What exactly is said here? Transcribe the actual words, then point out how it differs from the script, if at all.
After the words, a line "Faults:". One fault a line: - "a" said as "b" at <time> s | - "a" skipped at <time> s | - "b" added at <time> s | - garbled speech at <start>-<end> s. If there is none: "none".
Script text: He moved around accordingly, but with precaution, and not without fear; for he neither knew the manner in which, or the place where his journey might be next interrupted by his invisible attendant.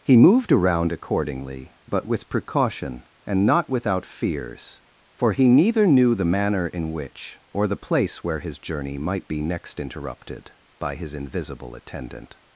He moved around accordingly, but with precaution, and not without fears; for he neither knew the manner in which, or the place where his journey might be next interrupted by his invisible attendant.
Faults:
- "fear" said as "fears" at 4.0 s